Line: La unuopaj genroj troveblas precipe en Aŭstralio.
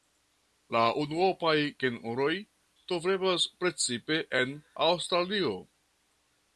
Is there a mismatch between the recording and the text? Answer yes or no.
no